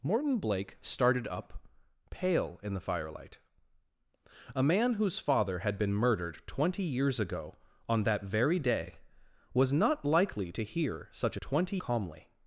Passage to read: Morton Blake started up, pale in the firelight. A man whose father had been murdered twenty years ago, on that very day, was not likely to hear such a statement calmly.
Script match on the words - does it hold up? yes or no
no